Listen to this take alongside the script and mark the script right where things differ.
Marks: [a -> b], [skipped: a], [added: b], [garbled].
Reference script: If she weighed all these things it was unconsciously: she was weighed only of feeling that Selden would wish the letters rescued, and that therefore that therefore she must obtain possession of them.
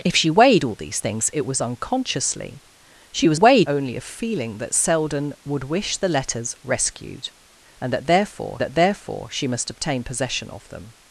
If she weighed all these things it was unconsciously: she was weighed only of feeling that Selden would wish the letters rescued, and that therefore that therefore she must obtain possession of them.